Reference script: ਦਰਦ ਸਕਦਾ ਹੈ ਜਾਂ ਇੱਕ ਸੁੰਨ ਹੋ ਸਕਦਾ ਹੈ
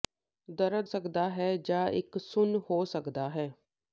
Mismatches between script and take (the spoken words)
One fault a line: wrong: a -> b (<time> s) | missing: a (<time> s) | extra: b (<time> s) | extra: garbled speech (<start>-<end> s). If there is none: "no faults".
no faults